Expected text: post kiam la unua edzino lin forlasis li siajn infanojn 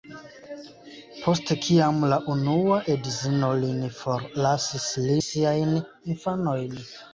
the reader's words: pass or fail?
pass